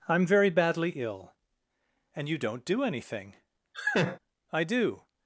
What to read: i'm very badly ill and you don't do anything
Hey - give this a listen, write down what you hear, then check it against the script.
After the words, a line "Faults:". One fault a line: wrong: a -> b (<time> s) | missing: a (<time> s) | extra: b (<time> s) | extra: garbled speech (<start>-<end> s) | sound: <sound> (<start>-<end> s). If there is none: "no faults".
i'm very badly ill and you don't do anything i do
Faults:
sound: laugh (3.7-4.2 s)
extra: i do (4.5 s)